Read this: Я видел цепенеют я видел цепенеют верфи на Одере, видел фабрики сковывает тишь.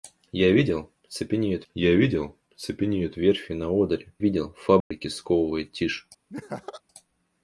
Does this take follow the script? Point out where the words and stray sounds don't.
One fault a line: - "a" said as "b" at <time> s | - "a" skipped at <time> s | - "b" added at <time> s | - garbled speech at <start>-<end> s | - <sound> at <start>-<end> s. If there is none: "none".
- dropout at 4.8-4.9 s
- laugh at 6.3-6.8 s